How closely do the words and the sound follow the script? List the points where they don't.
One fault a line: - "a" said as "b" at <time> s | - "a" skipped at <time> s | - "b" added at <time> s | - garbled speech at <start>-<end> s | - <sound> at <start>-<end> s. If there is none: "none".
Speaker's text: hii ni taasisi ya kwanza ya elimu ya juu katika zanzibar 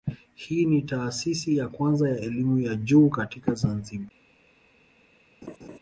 - laugh at 5.4-5.8 s